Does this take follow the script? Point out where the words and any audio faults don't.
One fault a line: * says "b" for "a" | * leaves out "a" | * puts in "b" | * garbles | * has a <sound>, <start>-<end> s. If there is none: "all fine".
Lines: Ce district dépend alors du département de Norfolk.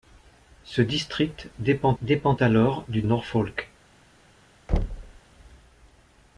* puts in "dépend"
* leaves out "département de"
* has a thud, 4.7-5.2 s